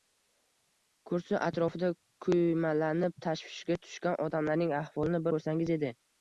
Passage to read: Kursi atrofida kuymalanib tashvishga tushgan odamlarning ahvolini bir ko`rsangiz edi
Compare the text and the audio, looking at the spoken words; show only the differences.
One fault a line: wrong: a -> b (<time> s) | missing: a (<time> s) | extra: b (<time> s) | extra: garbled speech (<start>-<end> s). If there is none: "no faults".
missing: bir (5.2 s)